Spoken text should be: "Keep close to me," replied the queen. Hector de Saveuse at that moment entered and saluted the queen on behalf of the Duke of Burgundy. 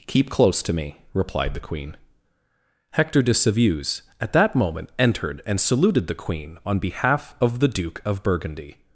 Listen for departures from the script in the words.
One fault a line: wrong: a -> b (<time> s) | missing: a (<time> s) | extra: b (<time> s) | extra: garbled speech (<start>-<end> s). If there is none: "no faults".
no faults